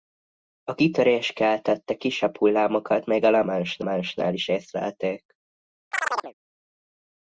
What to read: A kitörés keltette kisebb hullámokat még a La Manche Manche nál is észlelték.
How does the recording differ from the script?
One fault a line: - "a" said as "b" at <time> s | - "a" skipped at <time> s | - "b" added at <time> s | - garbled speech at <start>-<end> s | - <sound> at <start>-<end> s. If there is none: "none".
- chirp at 5.9-6.3 s